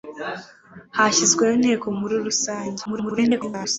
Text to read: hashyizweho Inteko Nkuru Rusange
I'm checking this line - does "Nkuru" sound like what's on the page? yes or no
yes